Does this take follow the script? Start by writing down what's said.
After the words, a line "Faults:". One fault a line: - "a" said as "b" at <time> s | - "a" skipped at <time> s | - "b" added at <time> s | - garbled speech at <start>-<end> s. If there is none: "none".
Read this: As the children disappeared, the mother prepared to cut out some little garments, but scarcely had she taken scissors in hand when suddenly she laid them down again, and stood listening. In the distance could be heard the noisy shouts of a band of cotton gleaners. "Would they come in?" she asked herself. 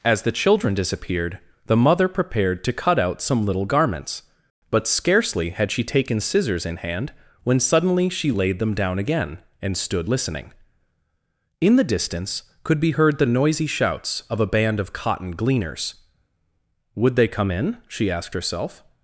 As the children disappeared, the mother prepared to cut out some little garments, but scarcely had she taken scissors in hand when suddenly she laid them down again, and stood listening. In the distance could be heard the noisy shouts of a band of cotton gleaners. "Would they come in?" she asked herself.
Faults:
none